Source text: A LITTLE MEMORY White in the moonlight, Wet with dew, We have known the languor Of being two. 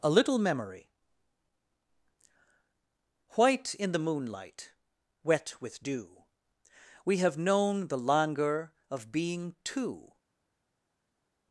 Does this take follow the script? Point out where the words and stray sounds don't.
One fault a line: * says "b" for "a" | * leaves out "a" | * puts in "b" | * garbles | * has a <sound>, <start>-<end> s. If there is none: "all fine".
all fine